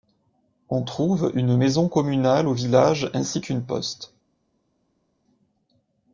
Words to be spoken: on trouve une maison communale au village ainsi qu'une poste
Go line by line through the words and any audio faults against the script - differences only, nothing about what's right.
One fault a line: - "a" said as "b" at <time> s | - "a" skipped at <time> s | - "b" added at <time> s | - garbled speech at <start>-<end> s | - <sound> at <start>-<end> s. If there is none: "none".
none